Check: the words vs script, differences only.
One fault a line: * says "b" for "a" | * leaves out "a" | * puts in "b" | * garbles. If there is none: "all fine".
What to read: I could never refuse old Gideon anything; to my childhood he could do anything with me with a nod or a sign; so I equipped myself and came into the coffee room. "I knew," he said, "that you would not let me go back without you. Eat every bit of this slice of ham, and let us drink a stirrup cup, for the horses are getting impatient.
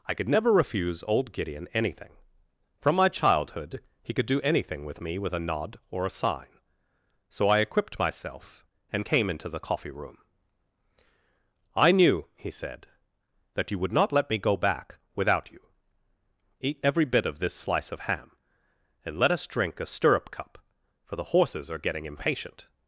* says "from" for "to"